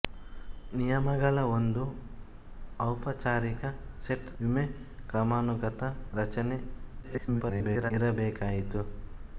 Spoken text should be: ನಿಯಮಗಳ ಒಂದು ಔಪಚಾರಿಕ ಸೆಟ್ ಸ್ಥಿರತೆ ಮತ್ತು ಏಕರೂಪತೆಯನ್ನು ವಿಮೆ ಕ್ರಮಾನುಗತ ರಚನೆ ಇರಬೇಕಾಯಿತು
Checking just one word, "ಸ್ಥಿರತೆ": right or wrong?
wrong